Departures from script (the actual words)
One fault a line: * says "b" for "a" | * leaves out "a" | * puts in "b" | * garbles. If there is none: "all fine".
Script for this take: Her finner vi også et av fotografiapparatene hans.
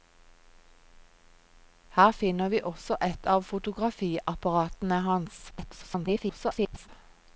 * garbles